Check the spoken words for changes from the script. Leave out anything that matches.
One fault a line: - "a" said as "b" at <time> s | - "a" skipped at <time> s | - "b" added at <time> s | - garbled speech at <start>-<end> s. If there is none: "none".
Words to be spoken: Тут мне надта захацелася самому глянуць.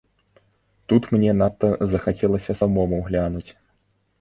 none